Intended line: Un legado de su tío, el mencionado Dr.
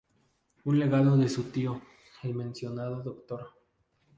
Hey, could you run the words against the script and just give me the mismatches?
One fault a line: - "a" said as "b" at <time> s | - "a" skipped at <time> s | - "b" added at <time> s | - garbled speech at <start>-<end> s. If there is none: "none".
none